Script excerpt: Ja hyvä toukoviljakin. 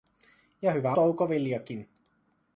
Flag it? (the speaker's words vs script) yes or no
no